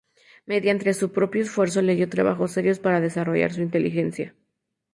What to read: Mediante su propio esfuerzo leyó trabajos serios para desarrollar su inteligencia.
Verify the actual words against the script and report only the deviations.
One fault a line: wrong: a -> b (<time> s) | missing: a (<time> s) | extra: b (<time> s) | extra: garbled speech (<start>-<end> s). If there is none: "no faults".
no faults